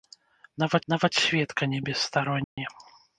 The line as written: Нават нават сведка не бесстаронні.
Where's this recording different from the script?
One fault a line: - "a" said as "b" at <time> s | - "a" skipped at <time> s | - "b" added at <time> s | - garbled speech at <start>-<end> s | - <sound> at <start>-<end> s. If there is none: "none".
- dropout at 2.4-2.6 s